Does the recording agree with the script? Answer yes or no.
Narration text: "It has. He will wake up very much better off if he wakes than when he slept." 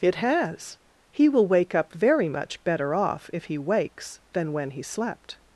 yes